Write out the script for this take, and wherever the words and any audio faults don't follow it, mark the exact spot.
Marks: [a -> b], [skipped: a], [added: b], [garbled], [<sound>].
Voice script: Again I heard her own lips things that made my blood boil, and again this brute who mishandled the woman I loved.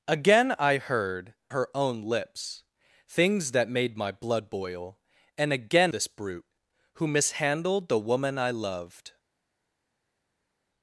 Again I heard her own lips things that made my blood boil, and again this brute who mishandled the woman I loved.